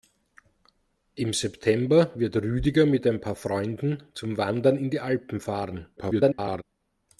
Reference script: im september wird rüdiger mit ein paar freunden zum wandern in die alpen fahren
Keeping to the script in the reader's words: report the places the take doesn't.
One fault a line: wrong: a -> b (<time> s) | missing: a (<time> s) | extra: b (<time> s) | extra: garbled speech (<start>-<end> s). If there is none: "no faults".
extra: garbled speech (6.0-6.6 s)